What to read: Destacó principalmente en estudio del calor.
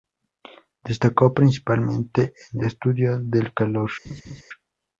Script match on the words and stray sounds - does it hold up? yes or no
no